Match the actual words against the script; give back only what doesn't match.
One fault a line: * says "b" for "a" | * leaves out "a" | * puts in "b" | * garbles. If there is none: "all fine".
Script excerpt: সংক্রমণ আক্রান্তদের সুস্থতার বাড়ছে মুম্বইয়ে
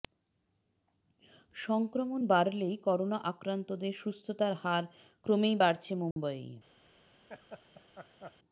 * puts in "বাড়লেই করোনা"
* puts in "হার ক্রমেই"